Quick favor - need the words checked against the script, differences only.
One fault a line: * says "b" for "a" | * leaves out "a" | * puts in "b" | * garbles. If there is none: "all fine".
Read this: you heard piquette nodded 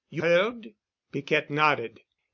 all fine